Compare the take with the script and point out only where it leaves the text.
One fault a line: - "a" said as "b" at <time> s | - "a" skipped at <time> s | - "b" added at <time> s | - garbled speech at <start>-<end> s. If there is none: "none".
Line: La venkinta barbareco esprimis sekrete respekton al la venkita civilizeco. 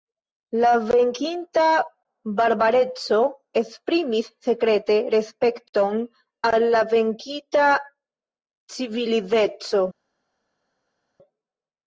none